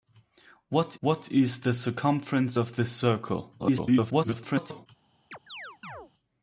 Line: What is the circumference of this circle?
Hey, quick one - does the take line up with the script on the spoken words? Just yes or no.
no